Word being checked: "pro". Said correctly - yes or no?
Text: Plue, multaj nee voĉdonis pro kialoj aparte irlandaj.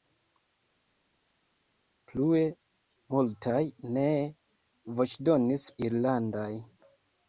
no